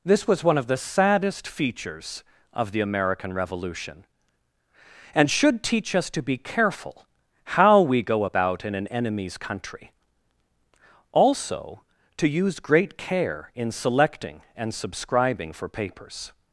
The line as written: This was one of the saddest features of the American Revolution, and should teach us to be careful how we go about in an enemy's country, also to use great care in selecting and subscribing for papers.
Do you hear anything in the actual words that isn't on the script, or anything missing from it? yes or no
no